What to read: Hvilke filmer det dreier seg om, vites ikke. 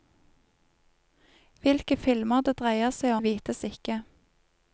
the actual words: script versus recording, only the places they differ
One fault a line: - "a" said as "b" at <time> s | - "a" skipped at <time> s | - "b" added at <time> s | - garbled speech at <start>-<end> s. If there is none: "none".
- "om" skipped at 3.1 s